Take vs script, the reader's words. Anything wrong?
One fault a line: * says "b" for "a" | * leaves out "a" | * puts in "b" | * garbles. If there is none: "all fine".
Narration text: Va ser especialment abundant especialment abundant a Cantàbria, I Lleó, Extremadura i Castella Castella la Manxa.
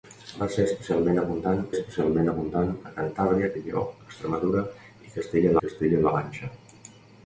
all fine